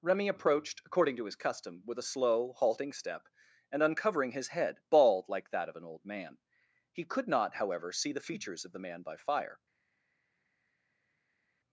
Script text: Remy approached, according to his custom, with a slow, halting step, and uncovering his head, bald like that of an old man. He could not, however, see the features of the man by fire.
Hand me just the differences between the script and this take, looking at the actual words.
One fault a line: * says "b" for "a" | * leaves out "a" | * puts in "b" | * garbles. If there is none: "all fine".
all fine